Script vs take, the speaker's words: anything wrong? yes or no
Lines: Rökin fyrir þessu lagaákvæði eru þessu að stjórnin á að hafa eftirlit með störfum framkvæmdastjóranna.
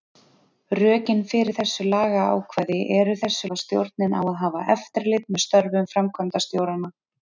no